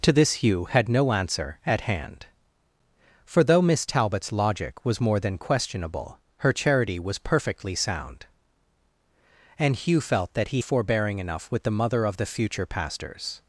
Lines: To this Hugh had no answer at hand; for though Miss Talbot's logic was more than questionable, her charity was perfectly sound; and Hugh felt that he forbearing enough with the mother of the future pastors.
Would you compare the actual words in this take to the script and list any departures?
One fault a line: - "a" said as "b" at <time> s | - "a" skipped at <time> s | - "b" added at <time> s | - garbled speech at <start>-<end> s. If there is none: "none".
none